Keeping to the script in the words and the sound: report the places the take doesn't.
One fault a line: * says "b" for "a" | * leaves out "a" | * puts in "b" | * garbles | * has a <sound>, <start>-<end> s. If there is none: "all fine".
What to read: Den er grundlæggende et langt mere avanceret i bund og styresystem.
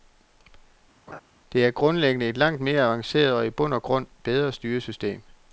* has a laugh, 1.1-1.2 s
* says "Det" for "Den"
* puts in "og"
* puts in "grund bedre"